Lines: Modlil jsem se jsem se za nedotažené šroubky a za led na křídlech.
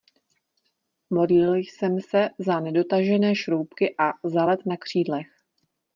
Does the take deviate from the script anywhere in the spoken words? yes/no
yes